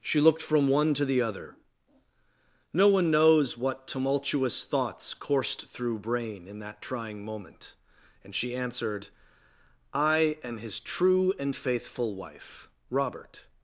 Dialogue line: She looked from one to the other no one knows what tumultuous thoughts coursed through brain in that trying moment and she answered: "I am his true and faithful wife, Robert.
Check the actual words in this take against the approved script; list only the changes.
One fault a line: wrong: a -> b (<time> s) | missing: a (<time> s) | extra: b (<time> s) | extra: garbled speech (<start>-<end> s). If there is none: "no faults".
no faults